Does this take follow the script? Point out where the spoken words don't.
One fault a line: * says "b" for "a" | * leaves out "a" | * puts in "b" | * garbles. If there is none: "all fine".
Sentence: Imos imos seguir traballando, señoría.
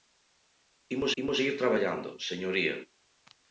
all fine